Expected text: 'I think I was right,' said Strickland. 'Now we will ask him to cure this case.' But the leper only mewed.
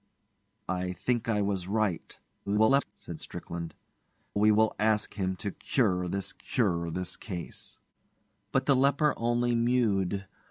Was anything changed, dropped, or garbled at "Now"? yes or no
yes